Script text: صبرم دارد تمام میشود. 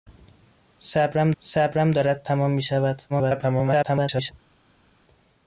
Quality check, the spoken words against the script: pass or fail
fail